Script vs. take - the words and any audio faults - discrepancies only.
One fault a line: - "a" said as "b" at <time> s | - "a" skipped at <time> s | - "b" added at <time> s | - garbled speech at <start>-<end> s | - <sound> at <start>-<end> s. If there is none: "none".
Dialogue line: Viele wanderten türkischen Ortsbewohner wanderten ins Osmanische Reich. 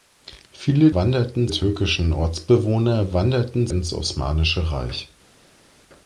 none